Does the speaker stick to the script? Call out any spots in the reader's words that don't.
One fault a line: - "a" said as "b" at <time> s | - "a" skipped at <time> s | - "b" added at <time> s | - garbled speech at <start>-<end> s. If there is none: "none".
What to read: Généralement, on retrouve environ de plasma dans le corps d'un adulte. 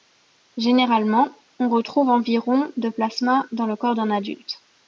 none